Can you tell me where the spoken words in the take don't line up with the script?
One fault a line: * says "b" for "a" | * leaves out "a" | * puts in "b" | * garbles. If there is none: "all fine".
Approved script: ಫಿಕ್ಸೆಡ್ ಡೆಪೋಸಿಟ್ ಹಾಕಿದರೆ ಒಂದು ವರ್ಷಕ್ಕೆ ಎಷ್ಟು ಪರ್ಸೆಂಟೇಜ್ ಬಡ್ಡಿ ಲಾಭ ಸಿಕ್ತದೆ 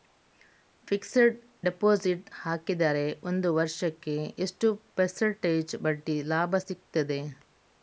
all fine